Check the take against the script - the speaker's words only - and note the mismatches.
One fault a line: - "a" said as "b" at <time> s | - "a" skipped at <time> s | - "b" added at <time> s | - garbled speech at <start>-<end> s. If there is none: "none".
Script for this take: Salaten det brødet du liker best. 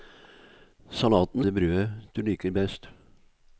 none